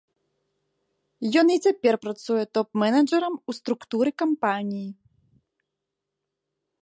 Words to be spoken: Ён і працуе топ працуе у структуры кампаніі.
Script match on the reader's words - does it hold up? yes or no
no